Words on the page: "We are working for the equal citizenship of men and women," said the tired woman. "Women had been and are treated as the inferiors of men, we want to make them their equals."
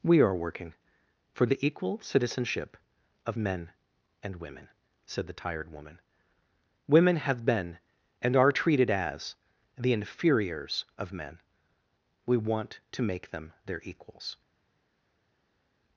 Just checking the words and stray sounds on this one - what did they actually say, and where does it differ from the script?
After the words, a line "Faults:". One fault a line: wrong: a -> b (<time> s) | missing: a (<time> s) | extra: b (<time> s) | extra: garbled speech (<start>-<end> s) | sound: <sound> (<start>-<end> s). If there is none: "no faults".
"We are working for the equal citizenship of men and women," said the tired woman. "Women have been and are treated as the inferiors of men, we want to make them their equals."
Faults:
wrong: had -> have (7.2 s)